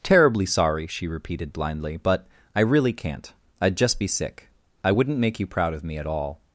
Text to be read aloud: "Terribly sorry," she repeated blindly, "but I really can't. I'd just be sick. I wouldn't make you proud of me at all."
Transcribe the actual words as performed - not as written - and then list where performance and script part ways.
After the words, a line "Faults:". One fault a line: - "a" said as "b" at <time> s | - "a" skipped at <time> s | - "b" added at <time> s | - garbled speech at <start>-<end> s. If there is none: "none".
"Terribly sorry," she repeated blindly, "but I really can't. I'd just be sick. I wouldn't make you proud of me at all."
Faults:
none